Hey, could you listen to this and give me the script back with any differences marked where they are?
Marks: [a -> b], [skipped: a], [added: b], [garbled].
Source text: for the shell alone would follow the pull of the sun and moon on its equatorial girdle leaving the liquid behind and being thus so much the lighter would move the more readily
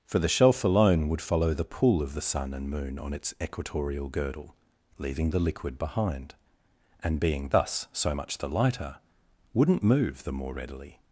for the [shell -> shelf] alone would follow the pull of the sun and moon on its equatorial girdle leaving the liquid behind and being thus so much the lighter [would -> wouldn't] move the more readily